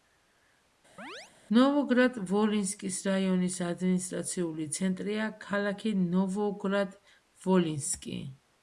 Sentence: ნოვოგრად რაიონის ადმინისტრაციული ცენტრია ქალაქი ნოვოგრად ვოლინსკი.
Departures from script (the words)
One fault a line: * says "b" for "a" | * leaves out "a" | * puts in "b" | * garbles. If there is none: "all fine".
* puts in "ვოლინსკის"